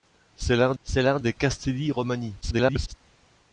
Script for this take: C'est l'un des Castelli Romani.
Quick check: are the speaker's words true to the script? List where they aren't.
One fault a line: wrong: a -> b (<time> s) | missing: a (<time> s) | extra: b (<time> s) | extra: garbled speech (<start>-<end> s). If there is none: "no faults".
extra: c'est l'un (0.8 s)
extra: garbled speech (2.4-2.9 s)